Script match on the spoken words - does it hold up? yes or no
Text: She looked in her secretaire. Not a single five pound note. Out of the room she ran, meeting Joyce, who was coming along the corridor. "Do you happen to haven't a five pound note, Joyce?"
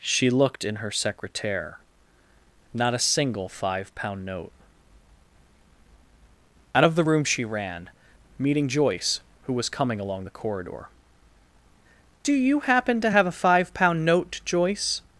no